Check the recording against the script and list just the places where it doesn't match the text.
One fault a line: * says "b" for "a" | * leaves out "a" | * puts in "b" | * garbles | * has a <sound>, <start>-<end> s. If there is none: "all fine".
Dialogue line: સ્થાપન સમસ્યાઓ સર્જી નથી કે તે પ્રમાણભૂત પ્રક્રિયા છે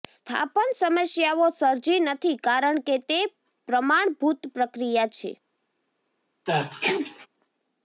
* puts in "કારણ"
* has a sneeze, 6.5-7.3 s